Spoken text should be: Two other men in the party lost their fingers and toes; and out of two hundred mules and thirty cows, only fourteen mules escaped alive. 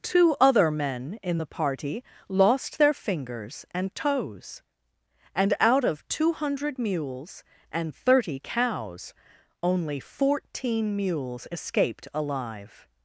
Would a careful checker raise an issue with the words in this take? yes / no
no